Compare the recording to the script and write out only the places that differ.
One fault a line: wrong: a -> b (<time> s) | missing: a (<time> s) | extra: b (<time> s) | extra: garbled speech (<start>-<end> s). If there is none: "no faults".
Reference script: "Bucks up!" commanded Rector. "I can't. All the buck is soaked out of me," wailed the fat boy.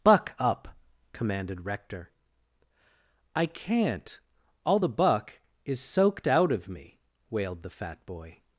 wrong: Bucks -> Buck (0.0 s)